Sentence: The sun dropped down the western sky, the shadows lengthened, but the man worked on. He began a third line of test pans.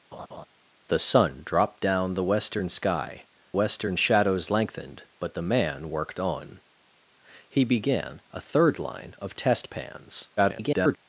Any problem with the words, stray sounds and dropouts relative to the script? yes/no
yes